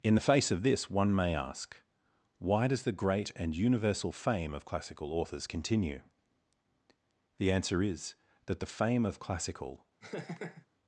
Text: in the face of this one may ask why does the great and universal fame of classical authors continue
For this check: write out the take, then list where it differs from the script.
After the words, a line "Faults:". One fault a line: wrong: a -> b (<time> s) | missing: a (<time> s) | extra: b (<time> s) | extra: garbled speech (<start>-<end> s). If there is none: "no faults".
in the face of this one may ask why does the great and universal fame of classical authors continue the answer is that the fame of classical
Faults:
extra: the answer is that the fame of classical (7.4 s)